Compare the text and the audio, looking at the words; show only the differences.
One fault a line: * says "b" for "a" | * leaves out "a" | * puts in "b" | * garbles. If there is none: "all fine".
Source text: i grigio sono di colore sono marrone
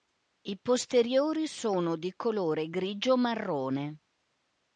* says "posteriori" for "grigio"
* says "grigio" for "sono"